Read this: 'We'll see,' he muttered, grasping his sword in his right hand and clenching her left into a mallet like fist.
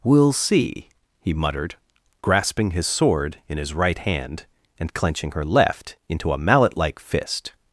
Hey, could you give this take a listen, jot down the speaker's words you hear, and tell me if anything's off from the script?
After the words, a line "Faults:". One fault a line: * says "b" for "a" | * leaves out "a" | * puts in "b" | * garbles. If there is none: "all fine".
'We'll see,' he muttered, grasping his sword in his right hand and clenching her left into a mallet like fist.
Faults:
all fine